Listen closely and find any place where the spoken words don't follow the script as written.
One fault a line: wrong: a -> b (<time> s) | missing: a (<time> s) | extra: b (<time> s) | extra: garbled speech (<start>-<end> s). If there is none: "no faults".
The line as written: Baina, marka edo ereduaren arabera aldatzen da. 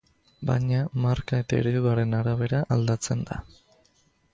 wrong: edo -> eta (1.4 s)